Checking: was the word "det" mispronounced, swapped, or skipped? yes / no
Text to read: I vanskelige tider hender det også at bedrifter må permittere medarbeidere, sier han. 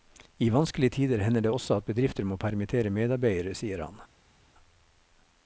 no